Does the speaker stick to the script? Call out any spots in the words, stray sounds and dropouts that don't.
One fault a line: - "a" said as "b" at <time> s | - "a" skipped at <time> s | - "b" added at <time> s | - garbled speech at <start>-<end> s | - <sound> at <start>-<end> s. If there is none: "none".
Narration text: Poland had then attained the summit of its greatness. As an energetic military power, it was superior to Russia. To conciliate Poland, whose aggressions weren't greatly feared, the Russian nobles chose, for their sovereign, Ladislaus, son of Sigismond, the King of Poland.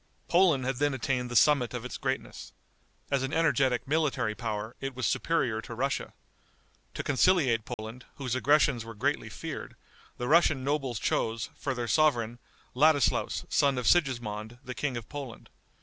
- dropout at 7.7-7.8 s
- "weren't" said as "were" at 8.8 s